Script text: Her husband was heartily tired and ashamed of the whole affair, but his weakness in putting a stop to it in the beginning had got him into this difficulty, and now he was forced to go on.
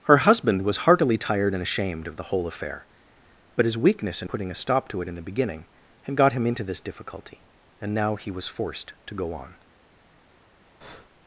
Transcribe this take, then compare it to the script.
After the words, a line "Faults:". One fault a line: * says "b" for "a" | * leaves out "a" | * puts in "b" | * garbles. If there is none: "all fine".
Her husband was heartily tired and ashamed of the whole affair, but his weakness in putting a stop to it in the beginning had got him into this difficulty, and now he was forced to go on.
Faults:
all fine